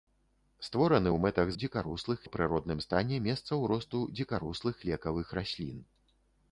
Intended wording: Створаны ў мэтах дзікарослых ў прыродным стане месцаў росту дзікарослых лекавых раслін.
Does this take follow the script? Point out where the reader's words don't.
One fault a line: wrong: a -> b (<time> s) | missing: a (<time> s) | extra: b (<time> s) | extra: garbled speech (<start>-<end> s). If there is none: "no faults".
no faults